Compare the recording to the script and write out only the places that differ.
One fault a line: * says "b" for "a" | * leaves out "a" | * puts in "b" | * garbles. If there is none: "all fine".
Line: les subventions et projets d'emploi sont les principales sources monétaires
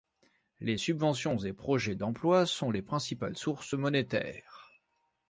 all fine